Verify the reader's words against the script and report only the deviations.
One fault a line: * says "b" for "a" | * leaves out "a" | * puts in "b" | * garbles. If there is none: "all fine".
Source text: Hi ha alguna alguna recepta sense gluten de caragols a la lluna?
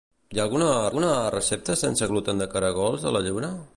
all fine